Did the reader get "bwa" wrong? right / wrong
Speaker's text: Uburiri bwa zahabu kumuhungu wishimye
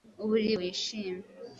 wrong